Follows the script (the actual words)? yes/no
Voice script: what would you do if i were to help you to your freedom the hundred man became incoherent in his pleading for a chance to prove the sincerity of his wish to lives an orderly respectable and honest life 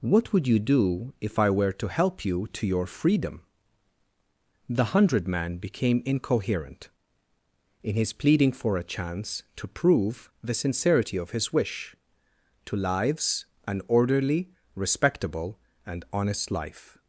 yes